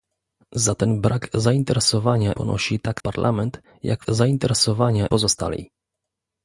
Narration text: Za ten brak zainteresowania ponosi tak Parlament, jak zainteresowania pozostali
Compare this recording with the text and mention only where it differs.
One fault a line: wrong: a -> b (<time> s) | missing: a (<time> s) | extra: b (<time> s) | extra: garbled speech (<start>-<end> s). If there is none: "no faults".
no faults